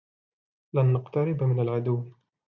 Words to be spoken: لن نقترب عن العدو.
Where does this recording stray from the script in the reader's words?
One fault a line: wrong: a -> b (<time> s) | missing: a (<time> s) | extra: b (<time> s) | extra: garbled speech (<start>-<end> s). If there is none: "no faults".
wrong: عن -> من (1.4 s)